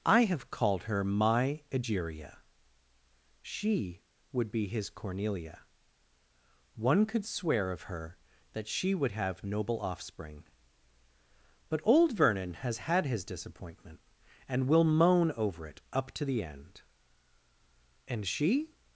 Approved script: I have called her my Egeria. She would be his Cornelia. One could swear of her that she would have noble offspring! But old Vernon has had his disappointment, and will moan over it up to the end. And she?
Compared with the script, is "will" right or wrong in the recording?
right